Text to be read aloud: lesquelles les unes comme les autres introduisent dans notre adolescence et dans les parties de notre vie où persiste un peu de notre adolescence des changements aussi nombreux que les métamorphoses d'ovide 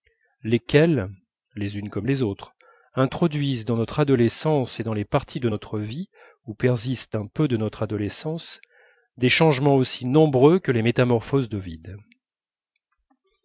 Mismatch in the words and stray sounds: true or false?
false